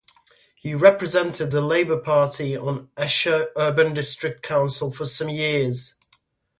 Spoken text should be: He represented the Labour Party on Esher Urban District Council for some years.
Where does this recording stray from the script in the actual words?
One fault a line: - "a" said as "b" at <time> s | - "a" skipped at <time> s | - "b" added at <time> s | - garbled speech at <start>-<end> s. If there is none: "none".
none